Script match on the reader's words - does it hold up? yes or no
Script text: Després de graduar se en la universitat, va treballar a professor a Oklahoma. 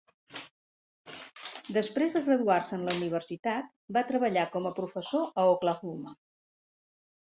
no